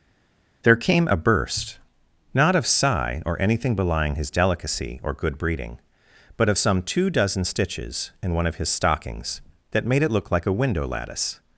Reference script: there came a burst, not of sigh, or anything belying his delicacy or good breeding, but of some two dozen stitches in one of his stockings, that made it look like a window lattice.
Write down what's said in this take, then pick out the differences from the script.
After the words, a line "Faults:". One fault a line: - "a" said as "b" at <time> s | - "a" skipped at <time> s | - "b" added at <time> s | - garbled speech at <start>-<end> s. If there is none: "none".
there came a burst, not of sigh, or anything belying his delicacy or good breeding, but of some two dozen stitches in one of his stockings, that made it look like a window lattice.
Faults:
none